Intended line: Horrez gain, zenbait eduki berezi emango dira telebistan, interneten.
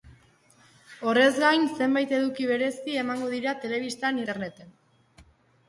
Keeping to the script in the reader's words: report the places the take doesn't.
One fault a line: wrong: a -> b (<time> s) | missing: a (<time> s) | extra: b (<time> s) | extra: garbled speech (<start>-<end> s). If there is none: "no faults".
no faults